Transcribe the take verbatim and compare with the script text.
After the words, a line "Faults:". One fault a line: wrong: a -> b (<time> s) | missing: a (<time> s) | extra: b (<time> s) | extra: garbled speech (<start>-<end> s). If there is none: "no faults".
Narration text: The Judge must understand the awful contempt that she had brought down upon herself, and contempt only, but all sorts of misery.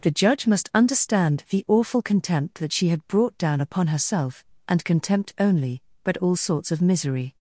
The Judge must understand the awful contempt that she had brought down upon herself, and contempt only, but all sorts of misery.
Faults:
no faults